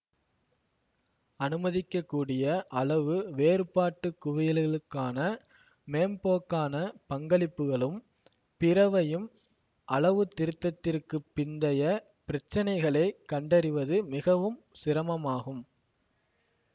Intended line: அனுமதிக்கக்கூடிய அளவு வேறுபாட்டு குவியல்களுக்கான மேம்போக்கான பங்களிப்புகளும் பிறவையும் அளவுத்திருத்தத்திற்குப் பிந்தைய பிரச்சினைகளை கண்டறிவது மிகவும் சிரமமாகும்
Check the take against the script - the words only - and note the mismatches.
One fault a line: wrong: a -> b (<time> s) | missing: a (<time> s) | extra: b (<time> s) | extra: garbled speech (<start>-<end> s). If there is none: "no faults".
no faults